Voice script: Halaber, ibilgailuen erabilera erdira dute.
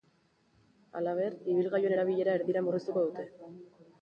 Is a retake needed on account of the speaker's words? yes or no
yes